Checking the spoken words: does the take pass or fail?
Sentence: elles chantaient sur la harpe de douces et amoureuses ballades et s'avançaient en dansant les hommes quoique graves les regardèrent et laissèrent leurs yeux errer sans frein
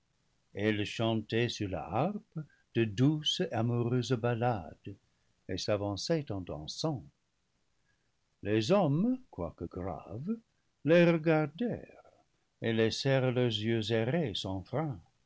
fail